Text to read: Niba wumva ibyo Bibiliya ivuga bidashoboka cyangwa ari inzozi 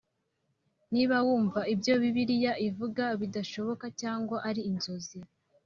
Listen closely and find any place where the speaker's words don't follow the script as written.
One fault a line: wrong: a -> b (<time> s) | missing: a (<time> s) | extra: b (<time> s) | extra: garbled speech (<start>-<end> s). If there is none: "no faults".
no faults